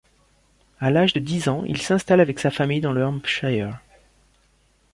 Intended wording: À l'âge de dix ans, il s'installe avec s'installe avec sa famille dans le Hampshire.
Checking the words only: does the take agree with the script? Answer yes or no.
no